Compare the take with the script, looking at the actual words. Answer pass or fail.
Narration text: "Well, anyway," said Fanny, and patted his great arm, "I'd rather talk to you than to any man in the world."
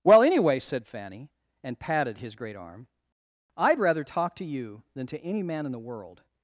pass